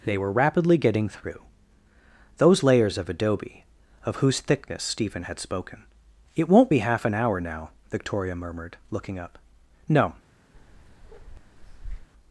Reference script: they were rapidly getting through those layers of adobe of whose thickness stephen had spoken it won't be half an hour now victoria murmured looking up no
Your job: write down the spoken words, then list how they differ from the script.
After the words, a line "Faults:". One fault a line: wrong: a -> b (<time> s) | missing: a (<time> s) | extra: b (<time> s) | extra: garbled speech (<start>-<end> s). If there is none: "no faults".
they were rapidly getting through those layers of adobe of whose thickness stephen had spoken it won't be half an hour now victoria murmured looking up no
Faults:
no faults